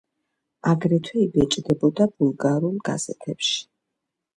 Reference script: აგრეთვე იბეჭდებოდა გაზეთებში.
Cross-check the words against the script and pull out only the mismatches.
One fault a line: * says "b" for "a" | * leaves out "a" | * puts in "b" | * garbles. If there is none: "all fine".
* puts in "ბულგარულ"